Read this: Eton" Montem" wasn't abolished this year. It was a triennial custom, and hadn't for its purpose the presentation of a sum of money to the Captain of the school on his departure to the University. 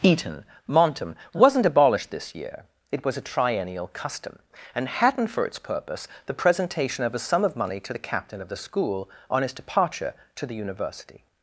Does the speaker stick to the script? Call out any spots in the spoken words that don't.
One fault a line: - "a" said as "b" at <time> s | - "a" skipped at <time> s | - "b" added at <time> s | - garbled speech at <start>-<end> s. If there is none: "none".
none